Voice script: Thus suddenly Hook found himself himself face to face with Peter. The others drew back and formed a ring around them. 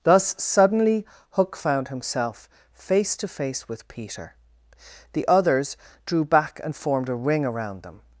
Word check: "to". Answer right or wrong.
right